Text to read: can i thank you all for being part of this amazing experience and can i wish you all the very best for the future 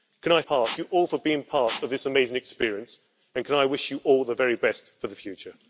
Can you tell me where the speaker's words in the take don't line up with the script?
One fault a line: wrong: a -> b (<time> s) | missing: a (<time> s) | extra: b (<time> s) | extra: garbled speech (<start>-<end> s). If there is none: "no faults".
wrong: thank -> part (0.4 s)